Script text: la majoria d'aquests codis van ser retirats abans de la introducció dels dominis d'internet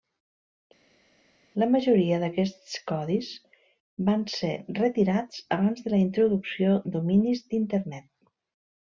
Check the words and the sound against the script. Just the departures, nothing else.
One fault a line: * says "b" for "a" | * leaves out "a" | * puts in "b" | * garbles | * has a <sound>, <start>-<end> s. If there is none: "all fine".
* leaves out "dels"